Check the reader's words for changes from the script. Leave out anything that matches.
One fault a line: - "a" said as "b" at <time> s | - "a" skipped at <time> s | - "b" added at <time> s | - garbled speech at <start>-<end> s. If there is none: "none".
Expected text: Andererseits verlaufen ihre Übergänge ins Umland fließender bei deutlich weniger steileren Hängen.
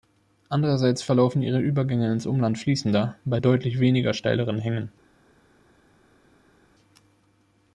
none